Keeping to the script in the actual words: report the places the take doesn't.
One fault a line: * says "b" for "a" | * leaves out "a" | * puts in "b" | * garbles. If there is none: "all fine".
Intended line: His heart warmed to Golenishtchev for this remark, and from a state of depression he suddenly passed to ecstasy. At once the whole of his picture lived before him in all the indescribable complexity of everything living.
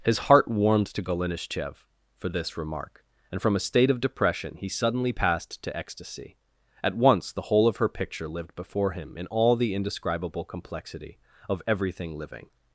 * says "her" for "his"